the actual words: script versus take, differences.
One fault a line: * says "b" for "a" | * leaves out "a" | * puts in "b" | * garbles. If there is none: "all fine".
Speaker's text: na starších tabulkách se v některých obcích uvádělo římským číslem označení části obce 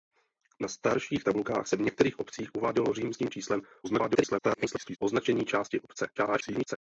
* garbles
* garbles